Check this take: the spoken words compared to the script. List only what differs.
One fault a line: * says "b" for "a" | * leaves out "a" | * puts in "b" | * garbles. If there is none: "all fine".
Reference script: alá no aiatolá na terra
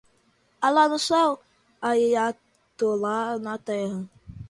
* puts in "céu"